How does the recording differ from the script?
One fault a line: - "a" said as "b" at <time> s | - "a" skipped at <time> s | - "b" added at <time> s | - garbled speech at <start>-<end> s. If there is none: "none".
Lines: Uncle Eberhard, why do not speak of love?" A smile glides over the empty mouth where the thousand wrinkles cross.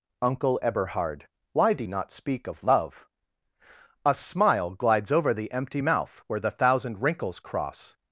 none